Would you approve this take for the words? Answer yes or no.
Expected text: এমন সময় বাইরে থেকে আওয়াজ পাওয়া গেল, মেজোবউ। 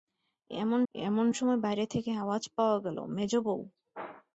no